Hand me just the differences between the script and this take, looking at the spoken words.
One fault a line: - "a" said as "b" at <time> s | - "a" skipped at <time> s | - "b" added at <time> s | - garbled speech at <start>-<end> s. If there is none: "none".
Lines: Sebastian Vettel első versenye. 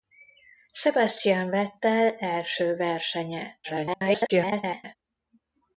- garbled speech at 3.6-5.0 s